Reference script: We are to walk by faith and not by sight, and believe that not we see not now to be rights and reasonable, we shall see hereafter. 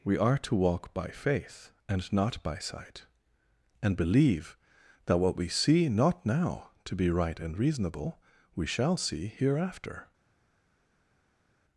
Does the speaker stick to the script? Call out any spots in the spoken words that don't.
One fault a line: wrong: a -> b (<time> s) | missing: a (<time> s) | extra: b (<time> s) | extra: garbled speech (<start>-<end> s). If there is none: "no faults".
wrong: not -> what (5.2 s)
wrong: rights -> right (7.1 s)